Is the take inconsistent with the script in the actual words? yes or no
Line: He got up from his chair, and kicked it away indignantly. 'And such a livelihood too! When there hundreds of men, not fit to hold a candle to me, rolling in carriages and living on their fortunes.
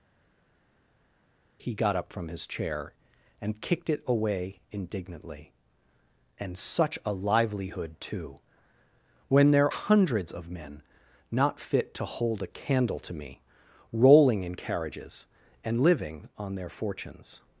no